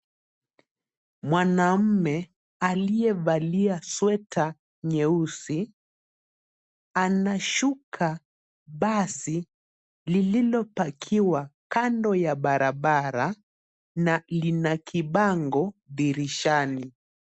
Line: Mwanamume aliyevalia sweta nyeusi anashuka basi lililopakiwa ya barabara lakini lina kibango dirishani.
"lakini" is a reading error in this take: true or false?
true